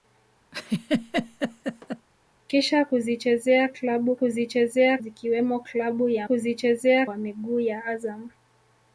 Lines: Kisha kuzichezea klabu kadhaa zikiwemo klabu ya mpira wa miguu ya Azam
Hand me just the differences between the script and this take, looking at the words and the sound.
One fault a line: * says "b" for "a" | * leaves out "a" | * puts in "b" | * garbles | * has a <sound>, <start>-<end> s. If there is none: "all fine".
* has a laugh, 0.5-2.1 s
* says "kuzichezea" for "kadhaa"
* says "kuzichezea" for "mpira"